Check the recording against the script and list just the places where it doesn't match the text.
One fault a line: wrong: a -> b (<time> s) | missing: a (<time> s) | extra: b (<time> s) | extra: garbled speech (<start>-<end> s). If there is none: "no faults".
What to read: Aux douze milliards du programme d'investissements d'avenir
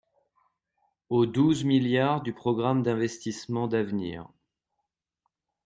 no faults